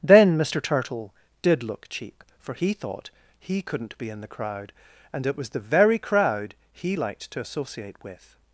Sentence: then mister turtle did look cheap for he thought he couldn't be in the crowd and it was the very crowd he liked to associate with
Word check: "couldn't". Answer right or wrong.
right